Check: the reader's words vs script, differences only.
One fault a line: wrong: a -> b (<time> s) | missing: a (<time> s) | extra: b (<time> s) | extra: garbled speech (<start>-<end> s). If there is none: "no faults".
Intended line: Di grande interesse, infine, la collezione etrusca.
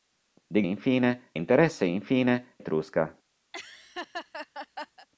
wrong: grande -> infine (0.6 s)
missing: la collezione (2.6 s)